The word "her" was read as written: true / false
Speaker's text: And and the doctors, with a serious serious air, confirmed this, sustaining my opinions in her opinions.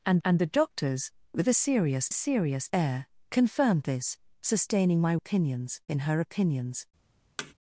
true